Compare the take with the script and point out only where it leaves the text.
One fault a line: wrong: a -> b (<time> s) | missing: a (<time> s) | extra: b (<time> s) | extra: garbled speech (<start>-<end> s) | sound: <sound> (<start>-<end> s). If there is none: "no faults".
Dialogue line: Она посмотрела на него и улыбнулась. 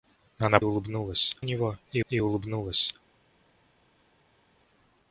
wrong: посмотрела -> улыбнулась (0.6 s)
extra: и (2.1 s)